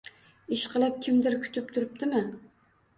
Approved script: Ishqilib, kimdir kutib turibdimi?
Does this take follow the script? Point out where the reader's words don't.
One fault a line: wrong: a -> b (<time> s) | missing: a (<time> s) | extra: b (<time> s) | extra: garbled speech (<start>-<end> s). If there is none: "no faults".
no faults